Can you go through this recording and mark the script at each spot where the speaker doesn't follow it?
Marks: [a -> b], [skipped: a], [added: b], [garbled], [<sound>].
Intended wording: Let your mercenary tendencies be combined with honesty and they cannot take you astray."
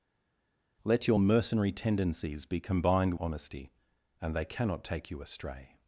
Let your mercenary tendencies be combined [skipped: with] honesty and they cannot take you astray."